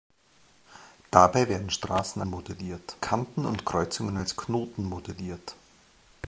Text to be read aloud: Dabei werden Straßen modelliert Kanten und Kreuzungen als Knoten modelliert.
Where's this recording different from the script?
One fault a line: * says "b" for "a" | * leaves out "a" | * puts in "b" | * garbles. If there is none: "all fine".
all fine